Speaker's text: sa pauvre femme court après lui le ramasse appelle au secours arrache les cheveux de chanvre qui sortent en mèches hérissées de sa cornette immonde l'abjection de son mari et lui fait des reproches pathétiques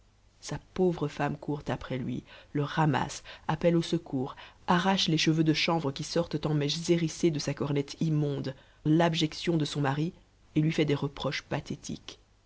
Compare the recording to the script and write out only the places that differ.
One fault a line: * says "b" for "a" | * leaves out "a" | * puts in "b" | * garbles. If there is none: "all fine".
all fine